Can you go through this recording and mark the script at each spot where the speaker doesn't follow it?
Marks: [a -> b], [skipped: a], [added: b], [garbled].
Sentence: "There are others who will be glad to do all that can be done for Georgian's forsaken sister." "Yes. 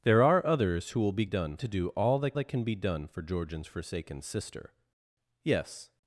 "There are others who will be [glad -> done] to do all that [added: that] can be done for Georgian's forsaken sister." "Yes.